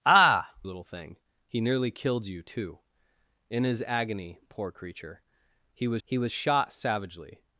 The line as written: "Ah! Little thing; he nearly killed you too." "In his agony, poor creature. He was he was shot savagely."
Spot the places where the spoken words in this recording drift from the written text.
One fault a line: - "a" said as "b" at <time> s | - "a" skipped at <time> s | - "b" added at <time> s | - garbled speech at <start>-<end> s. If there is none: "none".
none